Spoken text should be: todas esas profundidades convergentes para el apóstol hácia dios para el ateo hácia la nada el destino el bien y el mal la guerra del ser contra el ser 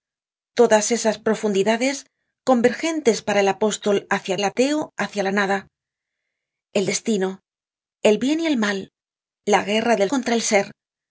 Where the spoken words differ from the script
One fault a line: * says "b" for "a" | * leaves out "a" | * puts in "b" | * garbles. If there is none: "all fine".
* leaves out "dios para"
* leaves out "ser"